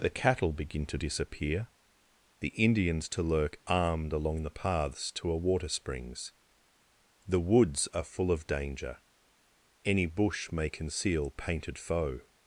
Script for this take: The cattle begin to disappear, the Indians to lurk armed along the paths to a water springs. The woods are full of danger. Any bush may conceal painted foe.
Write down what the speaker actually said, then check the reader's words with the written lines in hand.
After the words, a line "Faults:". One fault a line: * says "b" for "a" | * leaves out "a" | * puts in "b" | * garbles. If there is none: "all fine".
The cattle begin to disappear, the Indians to lurk armed along the paths to a water springs. The woods are full of danger. Any bush may conceal painted foe.
Faults:
all fine